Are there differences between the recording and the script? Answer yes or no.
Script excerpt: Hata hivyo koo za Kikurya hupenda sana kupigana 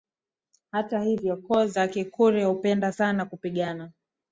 no